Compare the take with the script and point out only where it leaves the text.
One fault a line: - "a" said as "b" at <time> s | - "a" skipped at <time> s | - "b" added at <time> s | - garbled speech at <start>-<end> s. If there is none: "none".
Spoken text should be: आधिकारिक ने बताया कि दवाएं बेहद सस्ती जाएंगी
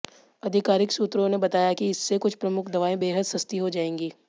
- "सूत्रों" added at 0.9 s
- "इससे कुछ प्रमुख" added at 1.9 s
- "हो" added at 3.6 s